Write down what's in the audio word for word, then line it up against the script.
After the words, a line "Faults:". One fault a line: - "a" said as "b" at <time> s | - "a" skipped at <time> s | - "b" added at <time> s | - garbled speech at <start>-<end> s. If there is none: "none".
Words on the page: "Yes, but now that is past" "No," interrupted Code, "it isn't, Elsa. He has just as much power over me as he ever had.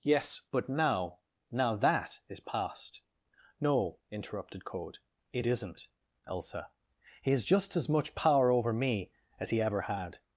"Yes, but now now that is past" "No," interrupted Code, "it isn't, Elsa. He has just as much power over me as he ever had.
Faults:
- "now" added at 1.5 s